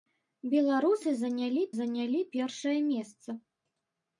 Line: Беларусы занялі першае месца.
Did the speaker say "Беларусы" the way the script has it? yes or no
yes